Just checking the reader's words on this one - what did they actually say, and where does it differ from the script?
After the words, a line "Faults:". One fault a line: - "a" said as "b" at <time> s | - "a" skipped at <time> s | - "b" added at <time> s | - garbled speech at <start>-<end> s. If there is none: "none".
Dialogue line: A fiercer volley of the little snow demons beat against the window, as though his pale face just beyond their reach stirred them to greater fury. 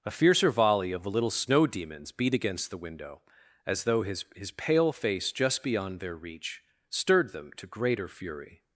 A fiercer volley of the little snow demons beat against the window, as though his his pale face just beyond their reach stirred them to greater fury.
Faults:
- "his" added at 4.3 s